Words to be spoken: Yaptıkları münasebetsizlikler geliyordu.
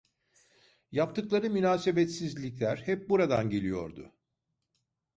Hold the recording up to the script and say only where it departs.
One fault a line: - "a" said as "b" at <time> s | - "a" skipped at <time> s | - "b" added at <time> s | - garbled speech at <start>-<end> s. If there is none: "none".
- "hep buradan" added at 2.8 s